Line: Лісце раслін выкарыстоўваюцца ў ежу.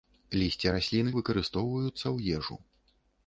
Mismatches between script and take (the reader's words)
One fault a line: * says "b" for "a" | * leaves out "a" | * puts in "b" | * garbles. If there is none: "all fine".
all fine